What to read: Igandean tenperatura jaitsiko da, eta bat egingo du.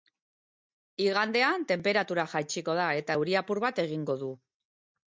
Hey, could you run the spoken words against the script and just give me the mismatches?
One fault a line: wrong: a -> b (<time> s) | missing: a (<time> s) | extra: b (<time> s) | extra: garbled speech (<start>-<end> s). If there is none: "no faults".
extra: euri apur (3.2 s)